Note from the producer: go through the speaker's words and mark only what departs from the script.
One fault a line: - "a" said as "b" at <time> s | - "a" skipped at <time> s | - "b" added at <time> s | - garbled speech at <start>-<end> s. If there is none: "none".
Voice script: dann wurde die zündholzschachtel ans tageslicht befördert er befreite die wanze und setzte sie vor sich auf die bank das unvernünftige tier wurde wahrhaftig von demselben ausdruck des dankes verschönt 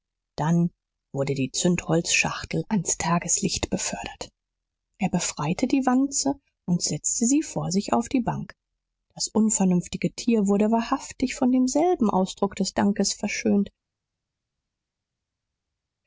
none